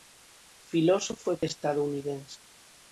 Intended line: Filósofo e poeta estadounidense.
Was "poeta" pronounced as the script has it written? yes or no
no